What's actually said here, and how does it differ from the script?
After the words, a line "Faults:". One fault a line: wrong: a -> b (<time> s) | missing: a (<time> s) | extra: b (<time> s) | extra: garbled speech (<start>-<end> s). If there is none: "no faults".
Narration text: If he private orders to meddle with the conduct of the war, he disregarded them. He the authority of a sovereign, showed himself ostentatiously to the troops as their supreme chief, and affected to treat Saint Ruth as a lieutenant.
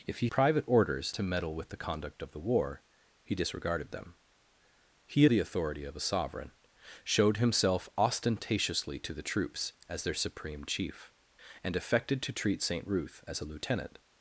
If he private orders to meddle with the conduct of the war, he disregarded them. He the authority of a sovereign, showed himself ostentatiously to the troops as their supreme chief, and affected to treat Saint Ruth as a lieutenant.
Faults:
no faults